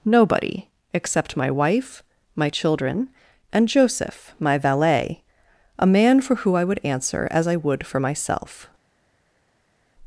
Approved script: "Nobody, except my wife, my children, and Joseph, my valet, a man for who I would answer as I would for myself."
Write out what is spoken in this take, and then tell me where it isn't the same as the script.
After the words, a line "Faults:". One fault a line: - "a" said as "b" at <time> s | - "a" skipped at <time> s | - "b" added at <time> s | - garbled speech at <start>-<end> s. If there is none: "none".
"Nobody, except my wife, my children, and Joseph, my valet, a man for who I would answer as I would for myself."
Faults:
none